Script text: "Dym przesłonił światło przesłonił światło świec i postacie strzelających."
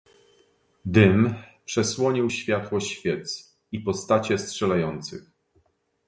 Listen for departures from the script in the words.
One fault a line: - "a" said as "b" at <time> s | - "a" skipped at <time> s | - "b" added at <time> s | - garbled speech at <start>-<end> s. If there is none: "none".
- "przesłonił światło" skipped at 2.8 s